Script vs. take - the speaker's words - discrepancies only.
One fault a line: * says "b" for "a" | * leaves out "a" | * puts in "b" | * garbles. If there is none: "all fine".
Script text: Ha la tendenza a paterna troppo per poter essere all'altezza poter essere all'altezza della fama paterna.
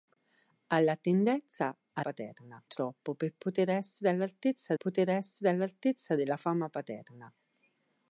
all fine